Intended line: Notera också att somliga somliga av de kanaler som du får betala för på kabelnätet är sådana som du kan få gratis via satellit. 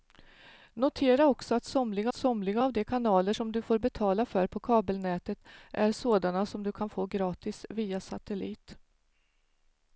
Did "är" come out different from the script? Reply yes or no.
no